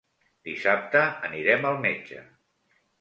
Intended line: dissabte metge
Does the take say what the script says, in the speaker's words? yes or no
no